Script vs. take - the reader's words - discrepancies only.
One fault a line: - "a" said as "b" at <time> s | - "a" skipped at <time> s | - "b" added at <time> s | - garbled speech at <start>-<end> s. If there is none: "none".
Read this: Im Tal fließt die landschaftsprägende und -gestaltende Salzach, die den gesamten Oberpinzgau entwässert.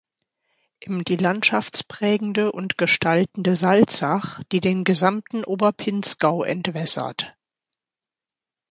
- "Tal fließt" skipped at 1.1 s